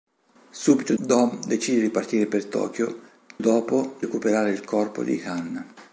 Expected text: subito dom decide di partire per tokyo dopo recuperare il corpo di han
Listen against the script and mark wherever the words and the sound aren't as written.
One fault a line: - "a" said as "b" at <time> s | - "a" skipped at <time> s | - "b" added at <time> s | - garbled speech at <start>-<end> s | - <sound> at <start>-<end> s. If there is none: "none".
none